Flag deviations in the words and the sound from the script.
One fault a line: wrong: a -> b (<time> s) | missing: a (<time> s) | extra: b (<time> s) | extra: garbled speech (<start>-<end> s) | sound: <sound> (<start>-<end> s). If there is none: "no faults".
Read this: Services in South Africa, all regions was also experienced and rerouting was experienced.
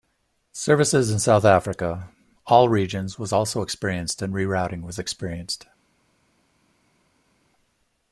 no faults